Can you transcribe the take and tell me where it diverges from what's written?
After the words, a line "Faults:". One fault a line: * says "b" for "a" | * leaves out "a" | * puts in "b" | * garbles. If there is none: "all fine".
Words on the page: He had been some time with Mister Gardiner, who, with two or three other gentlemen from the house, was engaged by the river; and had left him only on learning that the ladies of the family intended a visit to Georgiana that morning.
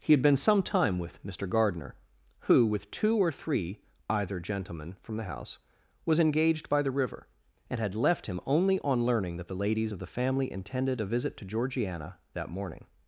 He had been some time with Mister Gardiner, who, with two or three either gentlemen from the house, was engaged by the river; and had left him only on learning that the ladies of the family intended a visit to Georgiana that morning.
Faults:
* says "either" for "other"